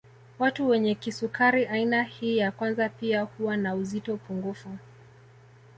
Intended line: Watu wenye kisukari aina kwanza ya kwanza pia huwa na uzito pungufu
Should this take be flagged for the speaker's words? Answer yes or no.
yes